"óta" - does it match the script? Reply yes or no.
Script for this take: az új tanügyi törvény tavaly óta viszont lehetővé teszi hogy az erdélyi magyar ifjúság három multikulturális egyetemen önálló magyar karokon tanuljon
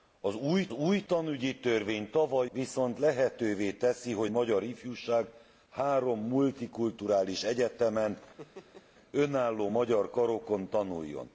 no